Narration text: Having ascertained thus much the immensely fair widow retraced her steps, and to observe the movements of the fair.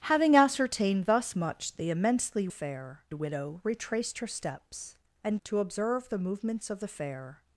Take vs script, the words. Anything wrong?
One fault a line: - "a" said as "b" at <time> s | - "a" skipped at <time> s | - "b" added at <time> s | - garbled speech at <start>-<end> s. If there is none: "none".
none